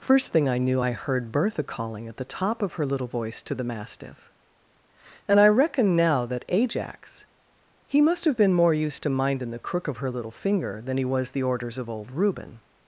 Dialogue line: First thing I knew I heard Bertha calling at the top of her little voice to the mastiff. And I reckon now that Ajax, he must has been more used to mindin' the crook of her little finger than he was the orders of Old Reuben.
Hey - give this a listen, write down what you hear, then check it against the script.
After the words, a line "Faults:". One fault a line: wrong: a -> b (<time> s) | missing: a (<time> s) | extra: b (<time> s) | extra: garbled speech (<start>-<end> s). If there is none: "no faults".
First thing I knew I heard Bertha calling at the top of her little voice to the mastiff. And I reckon now that Ajax, he must have been more used to mindin' the crook of her little finger than he was the orders of Old Reuben.
Faults:
wrong: has -> have (8.2 s)